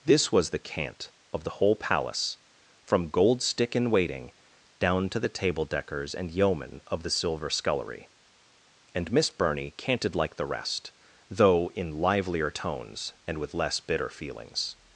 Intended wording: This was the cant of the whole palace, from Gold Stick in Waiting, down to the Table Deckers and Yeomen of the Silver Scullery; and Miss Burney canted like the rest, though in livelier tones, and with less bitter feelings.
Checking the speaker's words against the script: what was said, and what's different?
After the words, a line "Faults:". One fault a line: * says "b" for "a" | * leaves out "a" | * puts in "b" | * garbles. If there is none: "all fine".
This was the cant of the whole palace, from Gold Stick in Waiting, down to the Table Deckers and Yeomen of the Silver Scullery; and Miss Burney canted like the rest, though in livelier tones, and with less bitter feelings.
Faults:
all fine